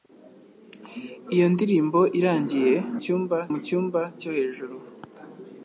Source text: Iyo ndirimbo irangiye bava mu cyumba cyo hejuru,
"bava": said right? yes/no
no